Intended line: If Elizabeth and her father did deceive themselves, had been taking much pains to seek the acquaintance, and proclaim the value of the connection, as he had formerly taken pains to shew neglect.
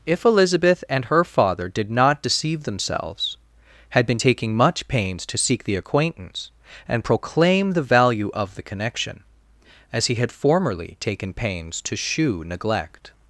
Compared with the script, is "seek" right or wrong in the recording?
right